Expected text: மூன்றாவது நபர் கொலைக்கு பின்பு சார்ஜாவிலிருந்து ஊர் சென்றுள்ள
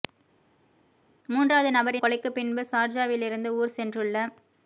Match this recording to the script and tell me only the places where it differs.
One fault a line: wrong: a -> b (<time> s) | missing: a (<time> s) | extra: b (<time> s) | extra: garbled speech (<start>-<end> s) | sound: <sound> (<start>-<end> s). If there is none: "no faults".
no faults